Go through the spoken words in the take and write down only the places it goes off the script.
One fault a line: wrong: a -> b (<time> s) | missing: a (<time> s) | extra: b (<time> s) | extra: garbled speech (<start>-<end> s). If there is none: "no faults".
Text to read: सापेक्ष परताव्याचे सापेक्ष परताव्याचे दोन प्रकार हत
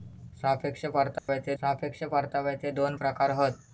no faults